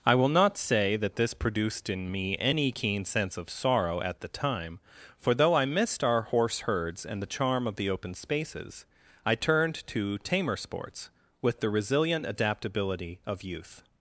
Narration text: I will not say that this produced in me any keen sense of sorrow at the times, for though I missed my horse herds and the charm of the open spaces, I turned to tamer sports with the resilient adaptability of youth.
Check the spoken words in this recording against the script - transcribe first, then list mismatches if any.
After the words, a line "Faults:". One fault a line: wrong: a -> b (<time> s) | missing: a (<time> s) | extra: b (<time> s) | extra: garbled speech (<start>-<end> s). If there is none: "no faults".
I will not say that this produced in me any keen sense of sorrow at the time, for though I missed our horse herds and the charm of the open spaces, I turned to tamer sports with the resilient adaptability of youth.
Faults:
wrong: times -> time (4.3 s)
wrong: my -> our (6.0 s)